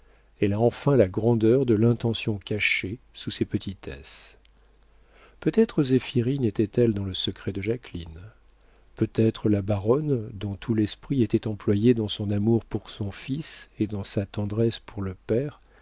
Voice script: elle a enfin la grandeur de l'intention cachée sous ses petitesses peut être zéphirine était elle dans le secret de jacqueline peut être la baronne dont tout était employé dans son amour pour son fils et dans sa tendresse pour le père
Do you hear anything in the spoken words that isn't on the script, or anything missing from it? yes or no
yes